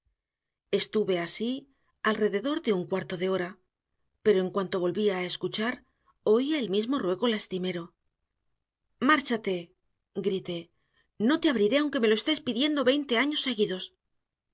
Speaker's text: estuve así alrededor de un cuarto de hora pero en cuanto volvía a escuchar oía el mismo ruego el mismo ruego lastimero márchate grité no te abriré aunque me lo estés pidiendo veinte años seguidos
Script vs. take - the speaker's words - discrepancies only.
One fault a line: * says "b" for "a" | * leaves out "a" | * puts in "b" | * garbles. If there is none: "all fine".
* leaves out "el mismo ruego"